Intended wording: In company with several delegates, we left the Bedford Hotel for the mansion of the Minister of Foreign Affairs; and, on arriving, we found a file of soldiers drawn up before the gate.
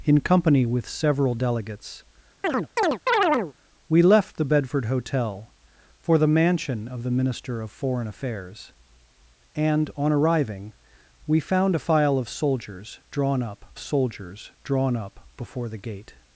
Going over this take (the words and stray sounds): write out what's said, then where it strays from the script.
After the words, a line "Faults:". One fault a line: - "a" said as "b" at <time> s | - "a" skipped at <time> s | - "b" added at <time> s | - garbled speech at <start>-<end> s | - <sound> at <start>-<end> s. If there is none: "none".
In company with several delegates, we left the Bedford Hotel for the mansion of the Minister of Foreign Affairs; and, on arriving, we found a file of soldiers drawn up soldiers drawn up before the gate.
Faults:
- chirp at 2.4-3.5 s
- "soldiers drawn up" added at 13.8 s